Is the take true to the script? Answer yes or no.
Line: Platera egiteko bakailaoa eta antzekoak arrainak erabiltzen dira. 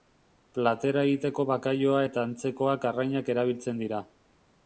yes